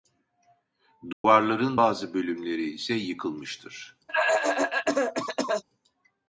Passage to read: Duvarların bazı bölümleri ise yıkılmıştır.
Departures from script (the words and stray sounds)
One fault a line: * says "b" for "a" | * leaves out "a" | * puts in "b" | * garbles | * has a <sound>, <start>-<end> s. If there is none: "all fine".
* has a dropout, 1.1-1.2 s
* has a cough, 4.1-5.6 s